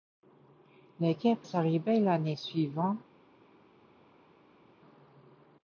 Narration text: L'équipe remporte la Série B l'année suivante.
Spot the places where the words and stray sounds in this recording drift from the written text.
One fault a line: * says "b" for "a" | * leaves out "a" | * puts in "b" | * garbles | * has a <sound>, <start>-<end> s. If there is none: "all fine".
* leaves out "remporte la"